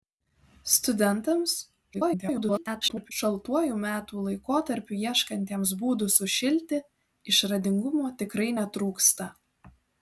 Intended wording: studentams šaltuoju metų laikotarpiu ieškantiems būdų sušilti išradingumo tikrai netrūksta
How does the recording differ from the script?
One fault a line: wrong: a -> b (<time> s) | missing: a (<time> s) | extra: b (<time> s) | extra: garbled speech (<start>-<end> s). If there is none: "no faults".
extra: garbled speech (1.9-3.1 s)